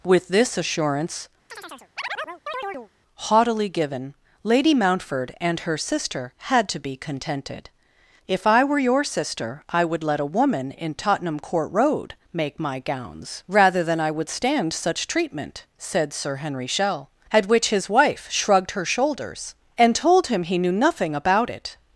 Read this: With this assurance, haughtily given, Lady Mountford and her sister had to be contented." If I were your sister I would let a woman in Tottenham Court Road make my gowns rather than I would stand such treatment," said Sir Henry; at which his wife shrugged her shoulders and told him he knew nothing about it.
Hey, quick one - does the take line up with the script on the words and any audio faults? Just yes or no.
no